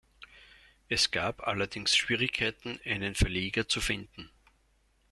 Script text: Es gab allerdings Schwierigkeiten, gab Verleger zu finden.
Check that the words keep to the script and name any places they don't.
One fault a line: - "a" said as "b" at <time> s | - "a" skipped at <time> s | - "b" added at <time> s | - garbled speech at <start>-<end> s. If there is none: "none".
- "gab" said as "einen" at 2.9 s